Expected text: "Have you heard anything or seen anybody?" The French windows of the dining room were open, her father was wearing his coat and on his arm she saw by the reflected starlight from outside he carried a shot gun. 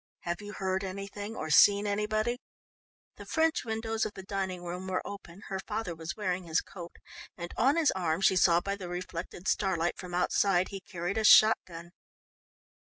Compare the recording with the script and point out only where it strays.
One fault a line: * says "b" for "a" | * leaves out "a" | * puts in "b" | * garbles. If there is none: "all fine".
all fine